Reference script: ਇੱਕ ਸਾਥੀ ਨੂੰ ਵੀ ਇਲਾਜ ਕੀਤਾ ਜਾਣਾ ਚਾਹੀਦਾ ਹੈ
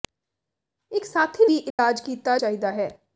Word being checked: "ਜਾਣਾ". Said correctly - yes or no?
no